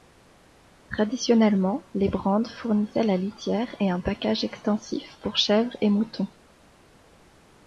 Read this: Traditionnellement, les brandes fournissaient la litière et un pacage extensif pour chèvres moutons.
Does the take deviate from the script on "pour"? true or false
false